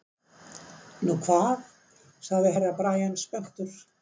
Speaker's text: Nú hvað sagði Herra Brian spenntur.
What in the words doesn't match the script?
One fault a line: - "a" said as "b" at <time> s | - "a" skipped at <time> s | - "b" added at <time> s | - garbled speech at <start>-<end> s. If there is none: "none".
none